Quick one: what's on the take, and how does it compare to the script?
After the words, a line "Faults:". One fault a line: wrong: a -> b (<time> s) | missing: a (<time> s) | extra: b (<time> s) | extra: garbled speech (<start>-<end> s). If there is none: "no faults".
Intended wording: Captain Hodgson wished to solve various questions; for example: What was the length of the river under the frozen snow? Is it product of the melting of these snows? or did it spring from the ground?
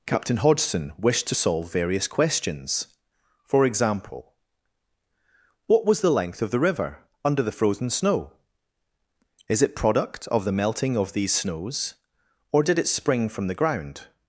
Captain Hodgson wished to solve various questions; for example: What was the length of the river under the frozen snow? Is it product of the melting of these snows? or did it spring from the ground?
Faults:
no faults